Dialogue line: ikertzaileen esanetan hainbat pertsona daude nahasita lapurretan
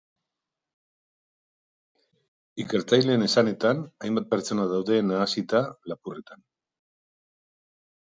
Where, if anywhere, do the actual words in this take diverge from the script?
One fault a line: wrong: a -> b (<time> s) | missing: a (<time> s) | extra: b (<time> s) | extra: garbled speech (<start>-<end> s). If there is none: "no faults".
no faults